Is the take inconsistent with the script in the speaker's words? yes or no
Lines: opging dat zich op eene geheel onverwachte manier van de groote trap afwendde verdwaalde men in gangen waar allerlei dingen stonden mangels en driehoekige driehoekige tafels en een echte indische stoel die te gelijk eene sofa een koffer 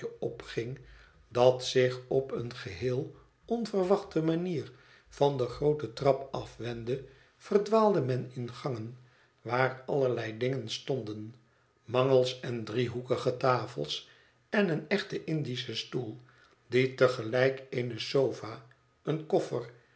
yes